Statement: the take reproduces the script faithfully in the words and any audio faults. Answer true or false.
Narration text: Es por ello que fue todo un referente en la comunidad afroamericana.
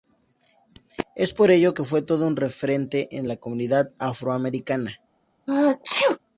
false